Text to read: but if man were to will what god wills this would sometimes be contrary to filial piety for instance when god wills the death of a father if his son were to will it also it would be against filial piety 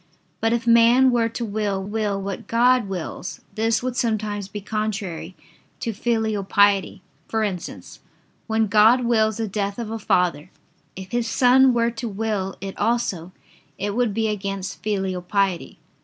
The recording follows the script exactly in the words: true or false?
false